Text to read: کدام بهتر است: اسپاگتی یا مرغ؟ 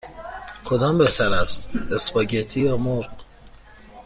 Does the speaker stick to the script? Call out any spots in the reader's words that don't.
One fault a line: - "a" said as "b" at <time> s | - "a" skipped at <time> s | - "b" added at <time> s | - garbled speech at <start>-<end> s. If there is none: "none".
none